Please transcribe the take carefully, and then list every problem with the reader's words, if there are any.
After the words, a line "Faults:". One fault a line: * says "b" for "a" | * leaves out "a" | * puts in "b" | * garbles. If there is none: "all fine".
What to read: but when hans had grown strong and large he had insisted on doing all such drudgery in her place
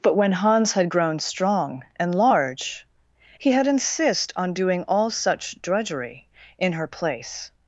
but when hans had grown strong and large he had insist on doing all such drudgery in her place
Faults:
* says "insist" for "insisted"